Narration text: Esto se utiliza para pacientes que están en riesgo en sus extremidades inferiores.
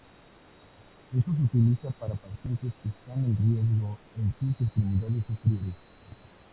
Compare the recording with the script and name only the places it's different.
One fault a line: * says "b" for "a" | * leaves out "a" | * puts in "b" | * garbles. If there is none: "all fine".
all fine